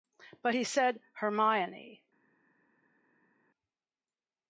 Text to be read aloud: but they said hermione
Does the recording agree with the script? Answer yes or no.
no